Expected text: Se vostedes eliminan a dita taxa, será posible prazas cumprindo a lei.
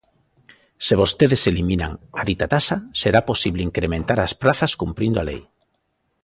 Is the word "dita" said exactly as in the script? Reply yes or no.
yes